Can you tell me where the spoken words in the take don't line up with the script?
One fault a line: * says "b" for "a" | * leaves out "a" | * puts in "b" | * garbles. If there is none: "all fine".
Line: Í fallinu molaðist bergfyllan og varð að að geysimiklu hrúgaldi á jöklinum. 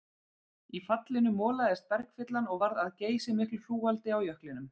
* leaves out "að"